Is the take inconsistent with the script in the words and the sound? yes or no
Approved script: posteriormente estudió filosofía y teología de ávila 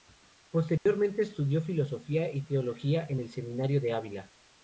yes